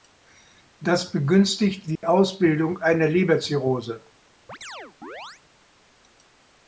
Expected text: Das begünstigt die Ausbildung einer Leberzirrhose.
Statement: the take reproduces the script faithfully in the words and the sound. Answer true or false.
false